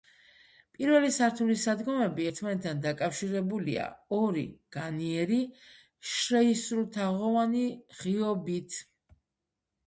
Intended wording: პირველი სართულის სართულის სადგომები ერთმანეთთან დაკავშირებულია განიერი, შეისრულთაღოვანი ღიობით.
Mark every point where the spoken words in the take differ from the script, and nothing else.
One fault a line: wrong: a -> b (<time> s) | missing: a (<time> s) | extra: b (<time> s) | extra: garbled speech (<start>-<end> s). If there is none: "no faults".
missing: სართულის (1.6 s)
extra: ორი (4.2 s)